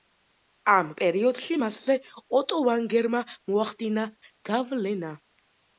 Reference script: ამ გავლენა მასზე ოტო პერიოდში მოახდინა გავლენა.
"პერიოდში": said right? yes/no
no